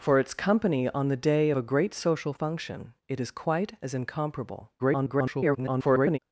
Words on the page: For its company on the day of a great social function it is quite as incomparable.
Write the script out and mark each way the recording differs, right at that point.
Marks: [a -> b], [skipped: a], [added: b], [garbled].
For its company on the day [skipped: of] a great social function it is quite as incomparable. [garbled]